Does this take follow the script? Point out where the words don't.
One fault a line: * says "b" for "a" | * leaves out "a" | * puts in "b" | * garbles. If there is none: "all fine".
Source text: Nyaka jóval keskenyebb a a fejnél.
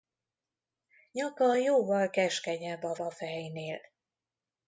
all fine